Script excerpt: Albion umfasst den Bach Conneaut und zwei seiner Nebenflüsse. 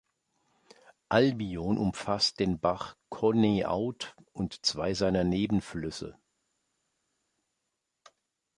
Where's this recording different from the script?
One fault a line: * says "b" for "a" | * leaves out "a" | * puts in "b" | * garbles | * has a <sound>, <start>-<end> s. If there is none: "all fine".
all fine